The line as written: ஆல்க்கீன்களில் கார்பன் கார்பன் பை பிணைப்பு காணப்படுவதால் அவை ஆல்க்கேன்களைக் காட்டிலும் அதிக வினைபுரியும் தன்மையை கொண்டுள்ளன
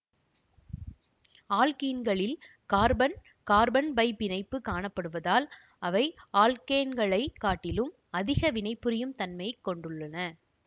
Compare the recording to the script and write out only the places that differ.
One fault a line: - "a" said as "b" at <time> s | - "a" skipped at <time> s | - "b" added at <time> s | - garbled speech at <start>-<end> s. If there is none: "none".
none